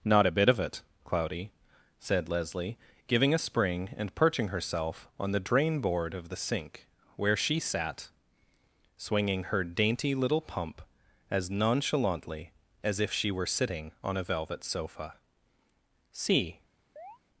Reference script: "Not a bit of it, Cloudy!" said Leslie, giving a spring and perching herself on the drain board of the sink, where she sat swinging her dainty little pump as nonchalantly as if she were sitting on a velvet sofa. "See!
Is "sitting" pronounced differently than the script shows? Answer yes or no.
no